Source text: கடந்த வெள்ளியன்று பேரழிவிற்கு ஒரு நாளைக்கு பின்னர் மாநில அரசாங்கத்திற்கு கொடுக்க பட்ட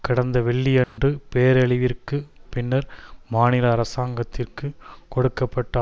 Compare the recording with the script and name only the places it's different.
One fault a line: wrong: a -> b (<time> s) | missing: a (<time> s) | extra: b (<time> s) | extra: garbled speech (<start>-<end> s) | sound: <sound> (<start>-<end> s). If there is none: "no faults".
sound: dropout (0.8-1.0 s)
missing: ஒரு நாளைக்கு (2.2 s)